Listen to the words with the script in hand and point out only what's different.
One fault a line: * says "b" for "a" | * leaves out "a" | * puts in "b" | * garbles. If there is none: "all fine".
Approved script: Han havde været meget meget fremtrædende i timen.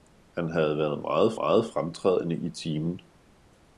all fine